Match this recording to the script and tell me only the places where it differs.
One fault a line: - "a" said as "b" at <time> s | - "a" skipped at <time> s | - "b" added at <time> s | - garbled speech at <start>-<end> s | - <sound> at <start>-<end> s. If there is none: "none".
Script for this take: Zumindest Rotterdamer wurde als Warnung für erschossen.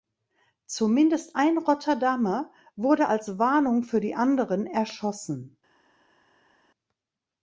- "ein" added at 1.4 s
- "die anderen" added at 4.0 s